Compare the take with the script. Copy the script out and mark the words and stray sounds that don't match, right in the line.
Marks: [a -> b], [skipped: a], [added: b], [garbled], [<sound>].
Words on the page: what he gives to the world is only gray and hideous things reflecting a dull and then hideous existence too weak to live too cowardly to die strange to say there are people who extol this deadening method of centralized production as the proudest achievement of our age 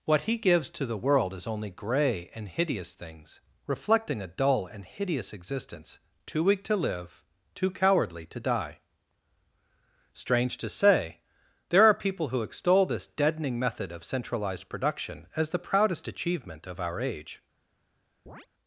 what he gives to the world is only gray and hideous things reflecting a dull and [skipped: then] hideous existence too weak to live too cowardly to die strange to say there are people who extol this deadening method of centralized production as the proudest achievement of our age [chirp]